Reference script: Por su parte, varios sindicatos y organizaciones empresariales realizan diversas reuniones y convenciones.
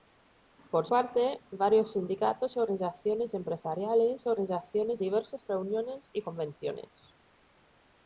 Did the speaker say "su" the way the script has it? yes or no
no